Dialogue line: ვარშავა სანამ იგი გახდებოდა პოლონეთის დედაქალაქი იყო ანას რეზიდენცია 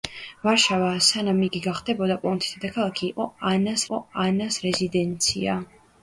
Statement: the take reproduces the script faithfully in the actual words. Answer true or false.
false